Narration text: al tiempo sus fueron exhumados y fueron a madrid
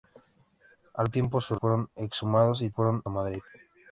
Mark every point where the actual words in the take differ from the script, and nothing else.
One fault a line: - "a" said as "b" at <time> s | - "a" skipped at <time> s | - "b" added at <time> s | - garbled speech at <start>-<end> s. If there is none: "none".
none